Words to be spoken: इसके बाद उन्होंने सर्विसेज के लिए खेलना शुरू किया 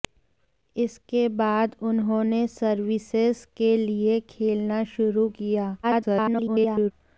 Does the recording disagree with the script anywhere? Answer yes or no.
yes